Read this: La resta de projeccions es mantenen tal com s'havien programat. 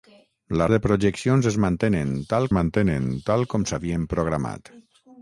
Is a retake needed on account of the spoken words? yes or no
yes